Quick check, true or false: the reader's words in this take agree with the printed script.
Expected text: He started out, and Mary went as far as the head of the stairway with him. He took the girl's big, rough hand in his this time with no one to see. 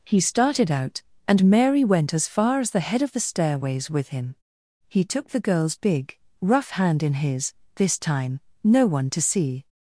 false